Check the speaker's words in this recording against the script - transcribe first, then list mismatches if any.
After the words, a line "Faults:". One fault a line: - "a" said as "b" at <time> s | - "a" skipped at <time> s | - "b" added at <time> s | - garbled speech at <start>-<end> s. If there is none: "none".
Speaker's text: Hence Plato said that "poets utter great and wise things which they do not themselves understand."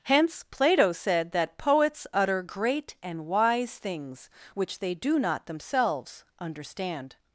Hence Plato said that "poets utter great and wise things which they do not themselves understand."
Faults:
none